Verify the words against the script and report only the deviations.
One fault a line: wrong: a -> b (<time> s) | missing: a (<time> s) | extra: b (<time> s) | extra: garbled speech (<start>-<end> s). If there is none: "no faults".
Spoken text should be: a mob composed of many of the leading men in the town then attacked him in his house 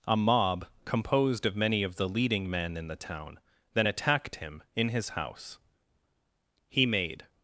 extra: he made (6.7 s)